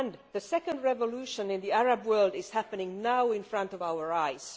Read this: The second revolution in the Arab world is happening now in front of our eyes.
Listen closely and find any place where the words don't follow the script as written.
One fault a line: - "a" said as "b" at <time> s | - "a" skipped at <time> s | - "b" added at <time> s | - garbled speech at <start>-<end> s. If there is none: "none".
none